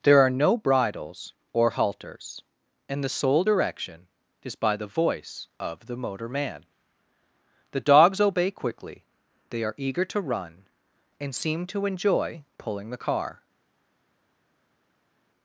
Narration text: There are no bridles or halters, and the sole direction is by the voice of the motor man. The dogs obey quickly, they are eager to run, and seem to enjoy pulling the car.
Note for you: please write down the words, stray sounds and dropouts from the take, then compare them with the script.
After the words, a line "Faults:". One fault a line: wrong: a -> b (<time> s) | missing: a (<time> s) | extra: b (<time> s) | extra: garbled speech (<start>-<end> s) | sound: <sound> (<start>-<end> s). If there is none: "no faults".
There are no bridles or halters, and the sole direction is by the voice of the motor man. The dogs obey quickly, they are eager to run, and seem to enjoy pulling the car.
Faults:
no faults